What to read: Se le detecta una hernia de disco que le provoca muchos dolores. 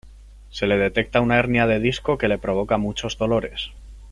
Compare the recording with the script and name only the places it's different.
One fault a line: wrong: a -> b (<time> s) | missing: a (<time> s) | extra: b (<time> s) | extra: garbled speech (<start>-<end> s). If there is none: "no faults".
no faults